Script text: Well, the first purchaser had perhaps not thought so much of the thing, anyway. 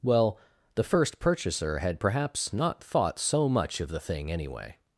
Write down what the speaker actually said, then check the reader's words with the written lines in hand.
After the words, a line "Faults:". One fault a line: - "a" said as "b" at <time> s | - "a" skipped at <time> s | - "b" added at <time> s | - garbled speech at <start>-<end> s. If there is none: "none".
Well, the first purchaser had perhaps not thought so much of the thing, anyway.
Faults:
none